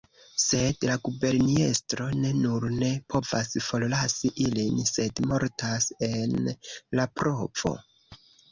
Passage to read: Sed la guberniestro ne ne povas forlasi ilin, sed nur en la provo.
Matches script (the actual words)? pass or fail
fail